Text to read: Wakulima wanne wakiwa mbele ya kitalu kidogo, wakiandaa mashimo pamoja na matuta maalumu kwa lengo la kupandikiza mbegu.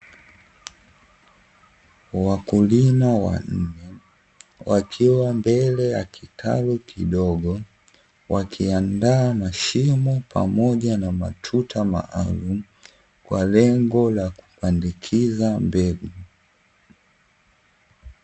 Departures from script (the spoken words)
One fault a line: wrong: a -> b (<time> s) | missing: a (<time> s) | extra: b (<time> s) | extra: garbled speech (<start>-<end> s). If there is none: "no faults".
no faults